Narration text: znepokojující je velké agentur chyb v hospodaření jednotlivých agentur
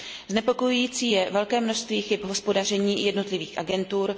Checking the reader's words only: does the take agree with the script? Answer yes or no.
no